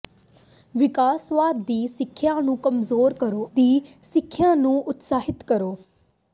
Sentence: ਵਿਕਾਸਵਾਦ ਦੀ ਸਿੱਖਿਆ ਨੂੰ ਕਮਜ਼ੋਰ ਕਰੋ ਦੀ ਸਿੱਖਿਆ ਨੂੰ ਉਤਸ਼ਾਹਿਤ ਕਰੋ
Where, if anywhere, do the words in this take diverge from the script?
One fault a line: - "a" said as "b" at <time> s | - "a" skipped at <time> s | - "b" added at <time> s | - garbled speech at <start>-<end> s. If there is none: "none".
none